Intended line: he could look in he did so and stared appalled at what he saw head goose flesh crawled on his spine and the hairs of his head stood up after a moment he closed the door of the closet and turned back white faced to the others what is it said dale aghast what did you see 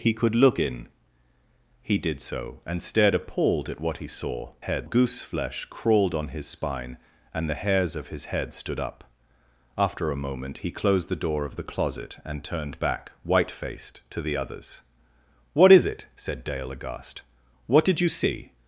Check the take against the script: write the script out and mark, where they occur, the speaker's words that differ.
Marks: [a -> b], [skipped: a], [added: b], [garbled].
he could look in he did so and stared appalled at what he saw head goose flesh crawled on his spine and the hairs of his head stood up after a moment he closed the door of the closet and turned back white faced to the others what is it said dale aghast what did you see